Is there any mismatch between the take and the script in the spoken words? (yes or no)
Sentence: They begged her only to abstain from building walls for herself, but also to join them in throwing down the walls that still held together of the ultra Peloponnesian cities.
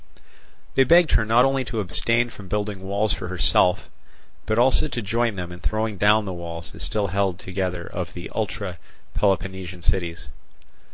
yes